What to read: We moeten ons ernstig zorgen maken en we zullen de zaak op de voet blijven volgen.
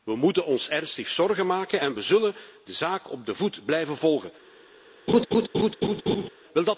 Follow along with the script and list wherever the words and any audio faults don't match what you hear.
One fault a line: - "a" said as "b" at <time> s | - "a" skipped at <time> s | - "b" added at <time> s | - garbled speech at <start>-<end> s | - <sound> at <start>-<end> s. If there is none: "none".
- laugh at 5.1-6.3 s